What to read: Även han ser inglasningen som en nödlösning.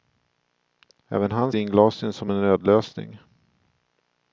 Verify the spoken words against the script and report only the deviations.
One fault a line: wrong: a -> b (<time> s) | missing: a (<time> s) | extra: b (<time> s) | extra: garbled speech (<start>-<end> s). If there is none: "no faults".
missing: ser (1.5 s)